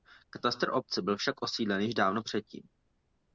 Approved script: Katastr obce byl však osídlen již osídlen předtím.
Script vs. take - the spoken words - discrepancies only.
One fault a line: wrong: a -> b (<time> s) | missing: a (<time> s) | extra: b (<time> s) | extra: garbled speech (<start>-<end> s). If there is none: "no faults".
wrong: osídlen -> dávno (1.9 s)